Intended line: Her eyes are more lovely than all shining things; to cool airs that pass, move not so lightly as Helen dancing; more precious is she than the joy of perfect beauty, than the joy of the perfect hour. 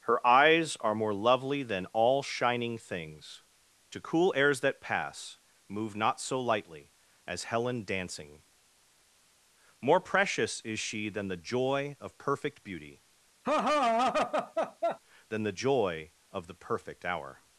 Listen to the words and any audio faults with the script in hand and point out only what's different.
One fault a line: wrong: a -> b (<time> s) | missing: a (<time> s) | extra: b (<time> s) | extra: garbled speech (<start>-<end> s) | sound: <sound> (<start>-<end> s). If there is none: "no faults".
sound: laugh (13.4-15.0 s)